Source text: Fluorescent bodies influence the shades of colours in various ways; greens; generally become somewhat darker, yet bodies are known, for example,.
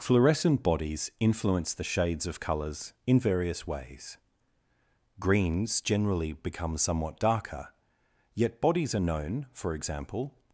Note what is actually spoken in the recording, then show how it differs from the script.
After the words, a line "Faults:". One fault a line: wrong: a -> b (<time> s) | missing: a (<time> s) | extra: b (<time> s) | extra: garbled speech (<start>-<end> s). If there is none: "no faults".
Fluorescent bodies influence the shades of colours in various ways; greens; generally become somewhat darker, yet bodies are known, for example,.
Faults:
no faults